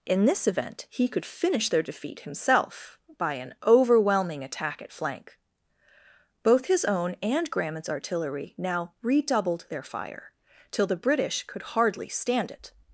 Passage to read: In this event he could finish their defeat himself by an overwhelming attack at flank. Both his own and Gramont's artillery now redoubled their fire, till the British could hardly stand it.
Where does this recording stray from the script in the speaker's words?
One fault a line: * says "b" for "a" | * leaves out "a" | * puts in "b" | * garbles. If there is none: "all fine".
all fine